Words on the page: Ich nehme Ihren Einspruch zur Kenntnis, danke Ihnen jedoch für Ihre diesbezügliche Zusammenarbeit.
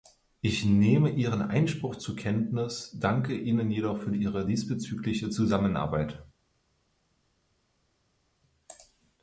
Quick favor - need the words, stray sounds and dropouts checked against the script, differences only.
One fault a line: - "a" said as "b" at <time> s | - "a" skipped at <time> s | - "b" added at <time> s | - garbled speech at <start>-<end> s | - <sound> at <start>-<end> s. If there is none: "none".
none